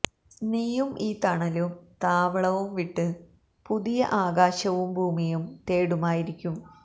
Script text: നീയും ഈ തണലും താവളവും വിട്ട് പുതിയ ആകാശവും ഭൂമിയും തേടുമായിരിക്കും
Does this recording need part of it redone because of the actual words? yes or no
no